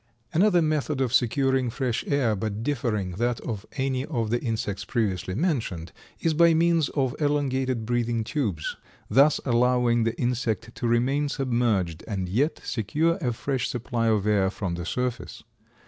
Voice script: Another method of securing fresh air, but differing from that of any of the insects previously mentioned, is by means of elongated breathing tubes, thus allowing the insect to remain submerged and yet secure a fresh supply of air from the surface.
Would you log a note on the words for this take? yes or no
yes